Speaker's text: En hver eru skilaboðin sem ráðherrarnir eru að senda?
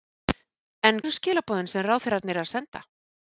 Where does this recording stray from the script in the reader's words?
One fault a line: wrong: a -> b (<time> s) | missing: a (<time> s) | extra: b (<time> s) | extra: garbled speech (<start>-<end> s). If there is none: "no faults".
missing: hver (1.0 s)